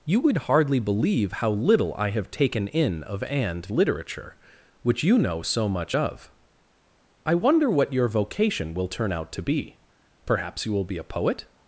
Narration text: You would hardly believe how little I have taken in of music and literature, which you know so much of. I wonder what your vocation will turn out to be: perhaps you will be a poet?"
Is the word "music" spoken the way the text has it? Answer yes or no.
no